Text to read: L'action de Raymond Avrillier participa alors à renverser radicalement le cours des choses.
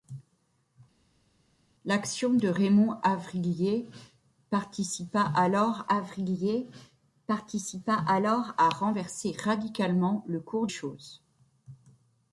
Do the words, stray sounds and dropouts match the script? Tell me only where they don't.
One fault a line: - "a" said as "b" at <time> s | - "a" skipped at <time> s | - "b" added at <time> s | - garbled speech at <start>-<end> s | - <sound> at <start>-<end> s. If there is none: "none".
- "Avrillier participa alors" added at 5.9 s
- "des" skipped at 10.7 s